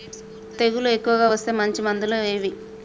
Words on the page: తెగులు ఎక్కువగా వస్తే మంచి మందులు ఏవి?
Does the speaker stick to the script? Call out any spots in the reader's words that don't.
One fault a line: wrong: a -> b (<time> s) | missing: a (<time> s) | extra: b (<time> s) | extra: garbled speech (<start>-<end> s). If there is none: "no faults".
no faults